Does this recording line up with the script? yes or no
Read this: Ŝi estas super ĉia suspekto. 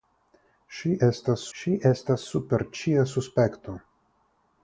no